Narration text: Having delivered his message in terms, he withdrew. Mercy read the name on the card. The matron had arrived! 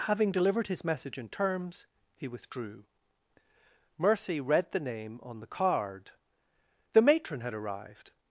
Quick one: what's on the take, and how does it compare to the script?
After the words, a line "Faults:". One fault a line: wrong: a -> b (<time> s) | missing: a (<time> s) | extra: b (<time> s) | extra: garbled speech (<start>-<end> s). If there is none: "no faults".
Having delivered his message in terms, he withdrew. Mercy read the name on the card. The matron had arrived!
Faults:
no faults